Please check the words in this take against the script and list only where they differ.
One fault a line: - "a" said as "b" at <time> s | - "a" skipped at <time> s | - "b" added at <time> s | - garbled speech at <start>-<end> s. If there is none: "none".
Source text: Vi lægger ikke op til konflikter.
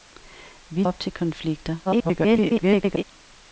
- "lægger ikke" skipped at 0.8 s
- garbled speech at 1.8-3.0 s